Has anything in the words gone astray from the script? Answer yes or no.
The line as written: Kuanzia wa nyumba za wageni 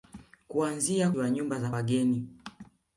no